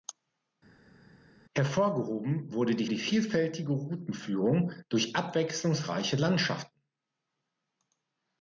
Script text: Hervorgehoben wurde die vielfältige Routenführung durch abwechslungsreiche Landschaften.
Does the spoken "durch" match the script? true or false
true